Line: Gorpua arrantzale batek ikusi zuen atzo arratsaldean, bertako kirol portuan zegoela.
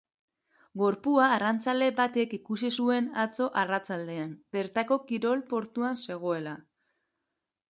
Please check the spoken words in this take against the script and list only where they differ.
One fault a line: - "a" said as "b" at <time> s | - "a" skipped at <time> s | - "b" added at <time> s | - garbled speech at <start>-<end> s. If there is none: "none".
none